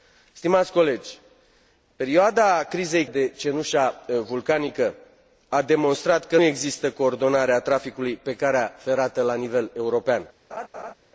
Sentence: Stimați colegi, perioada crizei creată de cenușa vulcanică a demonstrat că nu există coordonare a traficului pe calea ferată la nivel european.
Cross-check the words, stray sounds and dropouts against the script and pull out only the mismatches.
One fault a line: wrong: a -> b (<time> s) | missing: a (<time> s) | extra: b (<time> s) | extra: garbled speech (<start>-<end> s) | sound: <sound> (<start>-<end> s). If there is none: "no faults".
missing: creată (3.0 s)
missing: nu (6.4 s)
sound: laugh (10.5-10.9 s)